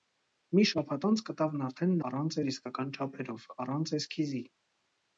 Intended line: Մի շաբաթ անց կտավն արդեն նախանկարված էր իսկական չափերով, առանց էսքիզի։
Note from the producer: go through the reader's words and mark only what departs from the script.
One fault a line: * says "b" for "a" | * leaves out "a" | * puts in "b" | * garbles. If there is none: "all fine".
* says "առանց" for "նախանկարված"